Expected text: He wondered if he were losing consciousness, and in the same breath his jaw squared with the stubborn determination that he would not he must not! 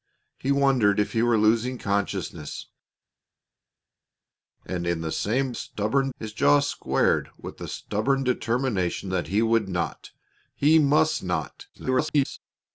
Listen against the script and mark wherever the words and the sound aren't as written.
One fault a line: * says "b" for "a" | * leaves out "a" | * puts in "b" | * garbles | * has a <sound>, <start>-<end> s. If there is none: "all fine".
* says "stubborn" for "breath"
* garbles